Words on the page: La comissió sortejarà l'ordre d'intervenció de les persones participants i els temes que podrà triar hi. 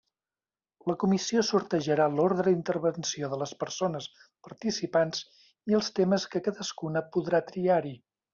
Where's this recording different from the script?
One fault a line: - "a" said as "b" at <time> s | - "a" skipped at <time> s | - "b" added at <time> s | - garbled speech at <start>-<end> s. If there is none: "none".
- "cadascuna" added at 6.5 s